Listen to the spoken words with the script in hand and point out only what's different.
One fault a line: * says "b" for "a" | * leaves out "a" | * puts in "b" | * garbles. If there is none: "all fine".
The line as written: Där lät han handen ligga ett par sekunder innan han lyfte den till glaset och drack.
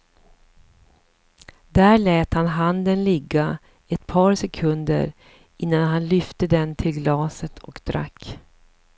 all fine